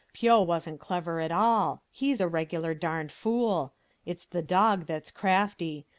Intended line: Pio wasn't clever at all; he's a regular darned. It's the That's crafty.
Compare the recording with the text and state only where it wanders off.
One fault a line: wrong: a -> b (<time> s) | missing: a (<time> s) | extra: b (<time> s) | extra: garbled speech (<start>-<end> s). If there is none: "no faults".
extra: fool (3.1 s)
extra: Dog (4.4 s)